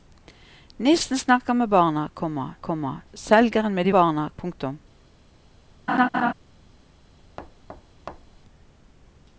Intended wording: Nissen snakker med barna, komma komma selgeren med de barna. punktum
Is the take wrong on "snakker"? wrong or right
right